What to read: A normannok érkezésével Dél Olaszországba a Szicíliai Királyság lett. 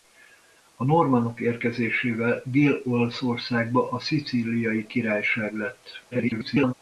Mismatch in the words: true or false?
true